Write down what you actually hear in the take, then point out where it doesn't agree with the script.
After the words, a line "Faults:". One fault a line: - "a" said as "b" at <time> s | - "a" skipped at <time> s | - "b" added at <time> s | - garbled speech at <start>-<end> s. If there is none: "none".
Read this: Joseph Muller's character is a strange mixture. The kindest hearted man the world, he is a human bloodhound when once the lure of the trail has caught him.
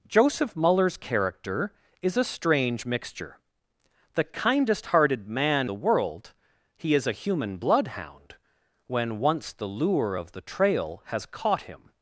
Joseph Muller's character is a strange mixture. The kindest hearted man the world, he is a human bloodhound when once the lure of the trail has caught him.
Faults:
none